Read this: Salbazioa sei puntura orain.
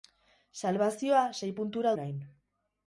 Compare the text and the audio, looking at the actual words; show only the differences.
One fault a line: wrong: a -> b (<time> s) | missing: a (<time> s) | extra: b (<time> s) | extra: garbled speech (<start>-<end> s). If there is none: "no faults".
no faults